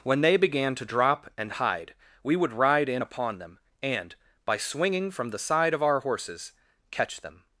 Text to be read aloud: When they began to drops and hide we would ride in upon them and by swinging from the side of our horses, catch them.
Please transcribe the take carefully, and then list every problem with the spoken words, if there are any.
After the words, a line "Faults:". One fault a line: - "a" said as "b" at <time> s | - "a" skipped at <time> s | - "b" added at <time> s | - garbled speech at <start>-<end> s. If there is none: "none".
When they began to drop and hide we would ride in upon them and by swinging from the side of our horses, catch them.
Faults:
- "drops" said as "drop" at 0.8 s